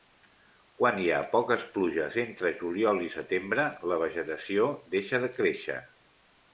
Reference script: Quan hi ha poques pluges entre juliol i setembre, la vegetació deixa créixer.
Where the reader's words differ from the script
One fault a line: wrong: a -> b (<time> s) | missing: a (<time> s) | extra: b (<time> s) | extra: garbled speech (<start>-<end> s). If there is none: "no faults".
extra: de (5.3 s)